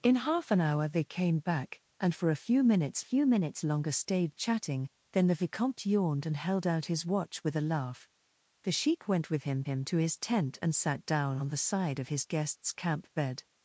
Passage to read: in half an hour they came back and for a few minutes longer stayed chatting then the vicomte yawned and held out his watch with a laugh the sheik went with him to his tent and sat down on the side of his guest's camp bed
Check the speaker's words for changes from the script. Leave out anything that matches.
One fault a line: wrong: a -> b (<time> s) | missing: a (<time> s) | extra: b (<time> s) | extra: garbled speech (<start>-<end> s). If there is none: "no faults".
extra: few minutes (3.0 s)
extra: him (9.7 s)